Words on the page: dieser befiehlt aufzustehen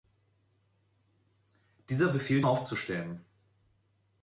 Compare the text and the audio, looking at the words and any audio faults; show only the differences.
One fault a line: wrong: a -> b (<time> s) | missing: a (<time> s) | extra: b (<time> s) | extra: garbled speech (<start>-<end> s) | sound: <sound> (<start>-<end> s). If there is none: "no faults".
no faults